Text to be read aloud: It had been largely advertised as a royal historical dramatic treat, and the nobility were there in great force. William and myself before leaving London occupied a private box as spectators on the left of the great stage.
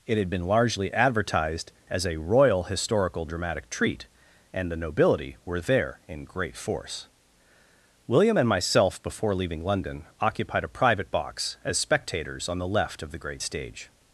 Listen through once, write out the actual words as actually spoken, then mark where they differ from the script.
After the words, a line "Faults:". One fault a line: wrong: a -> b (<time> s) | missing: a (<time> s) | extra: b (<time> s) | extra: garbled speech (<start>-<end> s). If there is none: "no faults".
It had been largely advertised as a royal historical dramatic treat, and the nobility were there in great force. William and myself before leaving London occupied a private box as spectators on the left of the great stage.
Faults:
no faults